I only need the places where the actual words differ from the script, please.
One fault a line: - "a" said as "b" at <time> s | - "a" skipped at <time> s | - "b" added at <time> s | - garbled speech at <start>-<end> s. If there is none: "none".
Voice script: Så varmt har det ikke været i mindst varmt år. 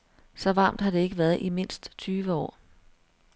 - "varmt" said as "tyve" at 2.0 s